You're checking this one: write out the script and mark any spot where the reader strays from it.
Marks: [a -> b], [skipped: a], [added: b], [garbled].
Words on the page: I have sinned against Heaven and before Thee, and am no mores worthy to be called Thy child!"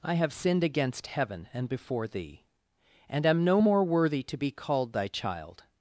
I have sinned against Heaven and before Thee, and am no [mores -> more] worthy to be called Thy child!"